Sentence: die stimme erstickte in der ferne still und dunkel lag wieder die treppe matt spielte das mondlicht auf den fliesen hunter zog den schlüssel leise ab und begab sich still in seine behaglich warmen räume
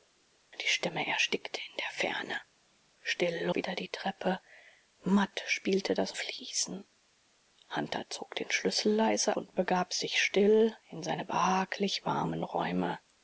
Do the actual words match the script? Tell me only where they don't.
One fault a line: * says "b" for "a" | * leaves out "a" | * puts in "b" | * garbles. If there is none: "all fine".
* leaves out "und dunkel lag"
* leaves out "mondlicht auf den"
* leaves out "ab"